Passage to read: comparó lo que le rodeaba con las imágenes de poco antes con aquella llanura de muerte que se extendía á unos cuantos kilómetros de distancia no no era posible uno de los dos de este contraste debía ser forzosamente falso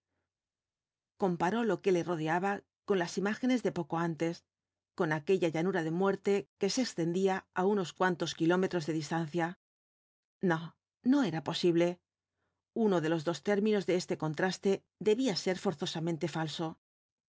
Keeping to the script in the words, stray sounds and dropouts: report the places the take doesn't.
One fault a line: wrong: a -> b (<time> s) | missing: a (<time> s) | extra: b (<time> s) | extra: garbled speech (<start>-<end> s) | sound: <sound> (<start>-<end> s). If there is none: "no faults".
extra: términos (13.5 s)